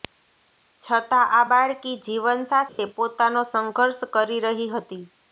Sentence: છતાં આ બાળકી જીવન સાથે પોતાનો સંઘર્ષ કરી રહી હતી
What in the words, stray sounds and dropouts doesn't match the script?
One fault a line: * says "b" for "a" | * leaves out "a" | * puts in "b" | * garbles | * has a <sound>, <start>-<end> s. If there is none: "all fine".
* has a dropout, 2.7-2.8 s